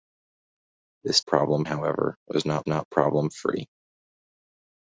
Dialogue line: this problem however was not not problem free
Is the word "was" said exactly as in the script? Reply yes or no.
yes